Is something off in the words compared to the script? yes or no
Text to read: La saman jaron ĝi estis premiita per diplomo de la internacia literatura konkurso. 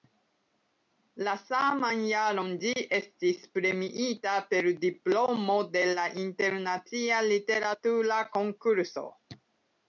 no